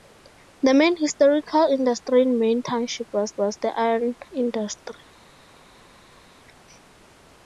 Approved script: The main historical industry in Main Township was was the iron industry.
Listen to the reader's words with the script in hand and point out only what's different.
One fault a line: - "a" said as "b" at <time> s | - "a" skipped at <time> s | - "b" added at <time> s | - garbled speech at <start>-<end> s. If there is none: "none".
none